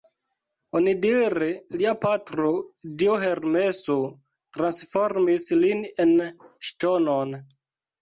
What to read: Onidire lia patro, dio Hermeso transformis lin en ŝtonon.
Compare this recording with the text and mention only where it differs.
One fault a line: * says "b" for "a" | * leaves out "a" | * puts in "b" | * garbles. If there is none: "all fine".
all fine